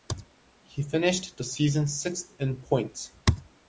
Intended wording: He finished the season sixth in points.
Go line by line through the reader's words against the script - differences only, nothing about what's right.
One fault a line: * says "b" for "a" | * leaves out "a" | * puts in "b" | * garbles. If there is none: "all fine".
all fine